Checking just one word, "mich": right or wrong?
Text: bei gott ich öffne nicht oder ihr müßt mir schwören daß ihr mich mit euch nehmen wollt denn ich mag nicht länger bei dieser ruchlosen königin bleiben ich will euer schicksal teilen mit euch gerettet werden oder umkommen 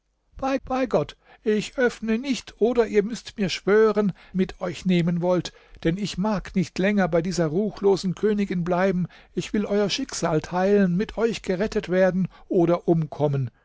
wrong